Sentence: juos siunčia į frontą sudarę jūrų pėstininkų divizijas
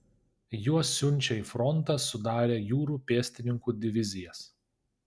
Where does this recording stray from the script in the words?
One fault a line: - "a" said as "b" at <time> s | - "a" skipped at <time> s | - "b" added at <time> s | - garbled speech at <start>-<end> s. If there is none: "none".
none